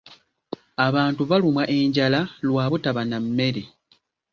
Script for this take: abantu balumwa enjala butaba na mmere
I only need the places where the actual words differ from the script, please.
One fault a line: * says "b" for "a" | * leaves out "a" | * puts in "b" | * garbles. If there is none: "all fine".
* puts in "lwa"